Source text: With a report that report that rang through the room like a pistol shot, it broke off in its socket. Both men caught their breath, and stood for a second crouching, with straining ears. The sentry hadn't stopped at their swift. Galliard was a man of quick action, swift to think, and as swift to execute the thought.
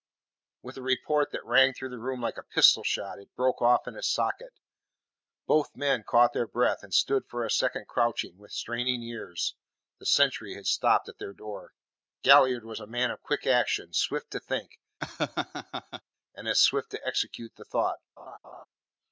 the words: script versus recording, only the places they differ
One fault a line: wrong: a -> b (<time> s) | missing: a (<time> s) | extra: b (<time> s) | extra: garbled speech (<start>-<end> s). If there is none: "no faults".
missing: report that (1.4 s)
wrong: hadn't -> had (10.5 s)
wrong: swift -> door (11.3 s)